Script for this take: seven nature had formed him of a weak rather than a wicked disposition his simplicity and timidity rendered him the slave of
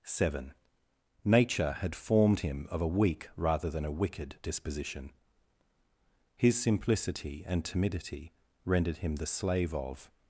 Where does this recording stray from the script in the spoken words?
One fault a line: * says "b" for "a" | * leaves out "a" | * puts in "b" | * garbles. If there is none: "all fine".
all fine